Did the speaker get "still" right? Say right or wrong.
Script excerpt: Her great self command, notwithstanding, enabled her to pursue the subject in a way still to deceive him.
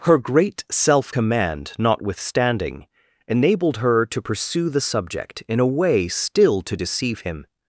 right